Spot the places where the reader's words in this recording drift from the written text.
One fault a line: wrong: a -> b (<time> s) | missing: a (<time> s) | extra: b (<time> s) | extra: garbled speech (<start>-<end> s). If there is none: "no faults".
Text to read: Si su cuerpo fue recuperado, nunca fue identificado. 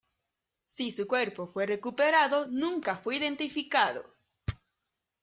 no faults